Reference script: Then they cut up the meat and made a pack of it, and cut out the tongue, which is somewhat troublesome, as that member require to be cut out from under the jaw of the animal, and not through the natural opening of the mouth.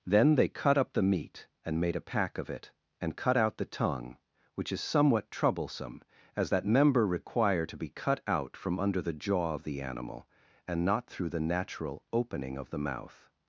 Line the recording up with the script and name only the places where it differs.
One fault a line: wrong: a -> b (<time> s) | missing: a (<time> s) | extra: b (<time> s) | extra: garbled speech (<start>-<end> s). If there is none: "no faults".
no faults